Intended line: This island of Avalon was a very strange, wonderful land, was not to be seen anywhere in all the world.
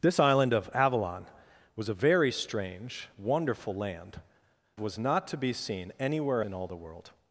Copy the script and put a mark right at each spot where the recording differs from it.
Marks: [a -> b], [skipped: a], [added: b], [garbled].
This island of Avalon was a very strange, wonderful land, was not to be seen anywhere in all the world.